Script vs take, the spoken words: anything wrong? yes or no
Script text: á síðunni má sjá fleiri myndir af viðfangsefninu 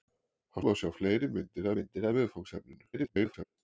yes